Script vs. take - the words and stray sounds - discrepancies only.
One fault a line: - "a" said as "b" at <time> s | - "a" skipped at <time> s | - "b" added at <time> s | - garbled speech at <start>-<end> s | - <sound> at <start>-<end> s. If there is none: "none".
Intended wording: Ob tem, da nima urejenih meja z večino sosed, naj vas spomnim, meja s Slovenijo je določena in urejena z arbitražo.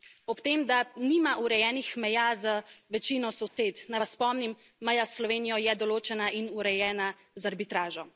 - dropout at 3.5-3.6 s